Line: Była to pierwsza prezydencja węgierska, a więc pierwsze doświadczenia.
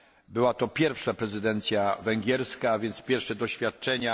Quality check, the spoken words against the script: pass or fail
pass